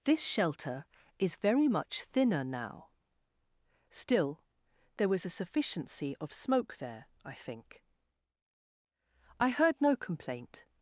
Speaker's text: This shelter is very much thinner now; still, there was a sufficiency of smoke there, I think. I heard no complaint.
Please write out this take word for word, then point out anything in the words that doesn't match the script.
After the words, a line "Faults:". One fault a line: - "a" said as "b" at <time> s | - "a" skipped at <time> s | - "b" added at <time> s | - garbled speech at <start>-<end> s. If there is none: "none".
This shelter is very much thinner now; still, there was a sufficiency of smoke there, I think. I heard no complaint.
Faults:
none